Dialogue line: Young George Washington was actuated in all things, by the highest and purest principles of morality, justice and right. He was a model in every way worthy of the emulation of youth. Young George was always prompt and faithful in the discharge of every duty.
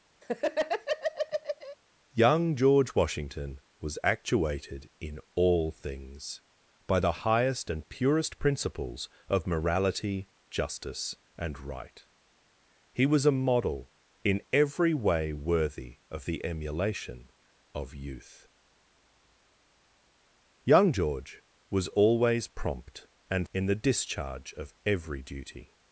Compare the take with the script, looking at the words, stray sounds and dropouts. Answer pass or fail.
fail